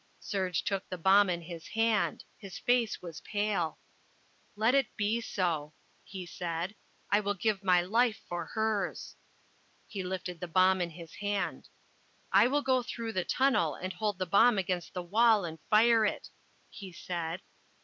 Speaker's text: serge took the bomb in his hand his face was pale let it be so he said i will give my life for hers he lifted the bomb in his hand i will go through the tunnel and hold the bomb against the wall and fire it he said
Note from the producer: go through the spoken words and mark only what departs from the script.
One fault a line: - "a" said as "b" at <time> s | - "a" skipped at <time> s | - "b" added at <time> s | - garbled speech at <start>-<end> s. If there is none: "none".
none